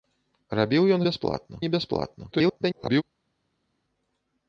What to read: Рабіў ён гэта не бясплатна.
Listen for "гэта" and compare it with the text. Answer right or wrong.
wrong